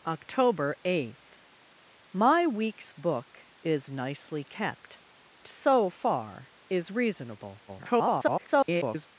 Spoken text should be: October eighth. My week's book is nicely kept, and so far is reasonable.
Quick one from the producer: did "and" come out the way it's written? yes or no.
no